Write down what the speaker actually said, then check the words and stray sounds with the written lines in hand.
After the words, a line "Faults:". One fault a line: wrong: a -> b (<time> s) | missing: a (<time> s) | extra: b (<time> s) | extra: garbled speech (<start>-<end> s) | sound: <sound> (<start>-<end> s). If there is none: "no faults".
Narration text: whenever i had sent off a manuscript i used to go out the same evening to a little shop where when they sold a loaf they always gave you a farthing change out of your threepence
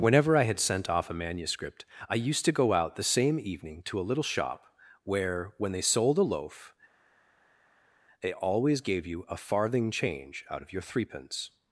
whenever i had sent off a manuscript i used to go out the same evening to a little shop where when they sold a loaf they always gave you a farthing change out of your threepence
Faults:
no faults